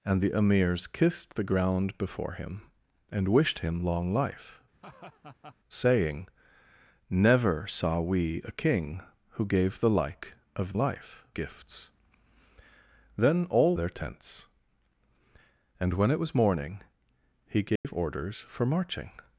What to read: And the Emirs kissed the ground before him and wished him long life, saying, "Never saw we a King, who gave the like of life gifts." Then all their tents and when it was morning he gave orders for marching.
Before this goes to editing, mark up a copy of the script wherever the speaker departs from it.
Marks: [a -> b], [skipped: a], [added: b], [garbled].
And the Emirs kissed the ground before him and wished him long life, saying, "Never saw we a King, who gave the like of life gifts." Then all their tents and when it was morning he gave orders for marching.